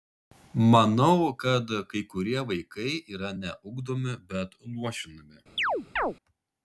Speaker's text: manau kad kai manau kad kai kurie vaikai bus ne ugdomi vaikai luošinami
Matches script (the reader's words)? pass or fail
fail